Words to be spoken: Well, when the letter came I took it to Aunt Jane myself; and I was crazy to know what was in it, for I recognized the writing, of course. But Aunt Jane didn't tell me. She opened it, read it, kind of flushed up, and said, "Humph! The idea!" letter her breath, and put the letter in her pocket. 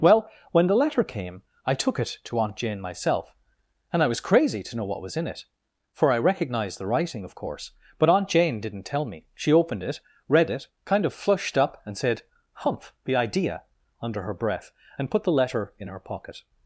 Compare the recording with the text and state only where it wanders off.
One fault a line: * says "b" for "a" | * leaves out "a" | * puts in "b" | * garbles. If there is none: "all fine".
* says "under" for "letter"